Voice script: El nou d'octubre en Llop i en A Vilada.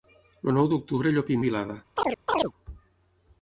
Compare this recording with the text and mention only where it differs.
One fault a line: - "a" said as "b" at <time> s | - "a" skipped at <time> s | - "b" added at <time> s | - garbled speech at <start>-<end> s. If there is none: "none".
none